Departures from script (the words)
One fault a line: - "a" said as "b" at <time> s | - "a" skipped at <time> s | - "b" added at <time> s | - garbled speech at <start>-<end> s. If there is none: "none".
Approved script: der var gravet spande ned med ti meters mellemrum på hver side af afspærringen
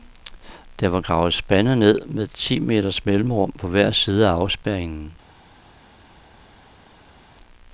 none